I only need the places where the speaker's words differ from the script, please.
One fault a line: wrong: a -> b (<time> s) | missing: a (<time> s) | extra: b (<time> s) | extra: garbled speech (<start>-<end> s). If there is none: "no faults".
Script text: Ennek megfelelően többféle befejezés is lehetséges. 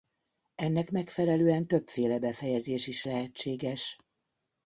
no faults